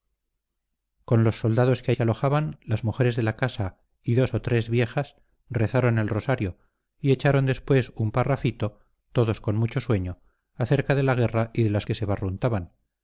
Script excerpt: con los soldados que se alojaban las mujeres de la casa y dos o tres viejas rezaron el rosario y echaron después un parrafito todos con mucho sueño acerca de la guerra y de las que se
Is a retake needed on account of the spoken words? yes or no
no